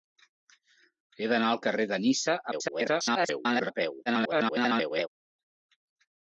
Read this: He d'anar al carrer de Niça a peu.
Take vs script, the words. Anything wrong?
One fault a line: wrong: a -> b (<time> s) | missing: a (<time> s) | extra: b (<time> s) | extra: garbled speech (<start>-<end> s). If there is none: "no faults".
extra: garbled speech (2.5-3.7 s)
extra: garbled speech (4.1-5.1 s)